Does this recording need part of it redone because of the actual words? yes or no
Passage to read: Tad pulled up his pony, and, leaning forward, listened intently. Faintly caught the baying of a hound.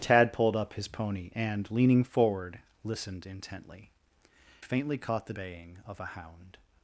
no